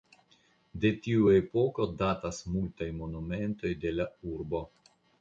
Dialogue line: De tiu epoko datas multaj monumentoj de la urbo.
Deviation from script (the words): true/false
false